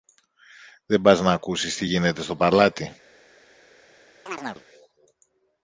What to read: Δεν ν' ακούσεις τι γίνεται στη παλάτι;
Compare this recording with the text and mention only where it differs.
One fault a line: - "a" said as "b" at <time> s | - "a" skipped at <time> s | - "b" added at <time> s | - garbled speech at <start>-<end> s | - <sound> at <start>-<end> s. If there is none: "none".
- "πας" added at 1.0 s
- "στη" said as "στο" at 2.2 s
- chirp at 4.3-4.7 s